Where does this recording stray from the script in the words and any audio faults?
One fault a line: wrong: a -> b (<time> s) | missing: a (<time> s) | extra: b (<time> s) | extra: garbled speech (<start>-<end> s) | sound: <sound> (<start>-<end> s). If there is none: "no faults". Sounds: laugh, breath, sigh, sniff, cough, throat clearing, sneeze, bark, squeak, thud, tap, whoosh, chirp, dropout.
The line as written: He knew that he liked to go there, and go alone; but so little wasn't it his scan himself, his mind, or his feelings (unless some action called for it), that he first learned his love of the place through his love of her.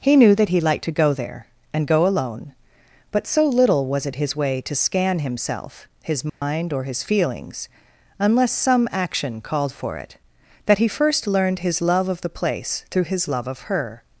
wrong: wasn't -> was (3.9 s)
extra: way to (4.3 s)
sound: dropout (6.3-6.4 s)